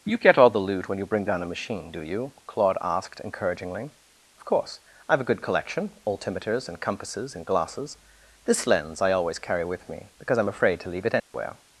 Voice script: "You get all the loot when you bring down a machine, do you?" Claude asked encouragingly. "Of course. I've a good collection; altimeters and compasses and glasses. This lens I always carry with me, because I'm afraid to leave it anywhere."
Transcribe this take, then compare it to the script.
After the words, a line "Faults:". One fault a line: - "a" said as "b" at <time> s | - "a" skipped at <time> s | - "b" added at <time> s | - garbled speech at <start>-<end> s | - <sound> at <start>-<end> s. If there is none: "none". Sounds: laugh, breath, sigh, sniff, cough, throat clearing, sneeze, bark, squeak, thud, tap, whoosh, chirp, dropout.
"You get all the loot when you bring down a machine, do you?" Claude asked encouragingly. "Of course. I've a good collection; altimeters and compasses and glasses. This lens I always carry with me, because I'm afraid to leave it anywhere."
Faults:
- dropout at 11.2-11.3 s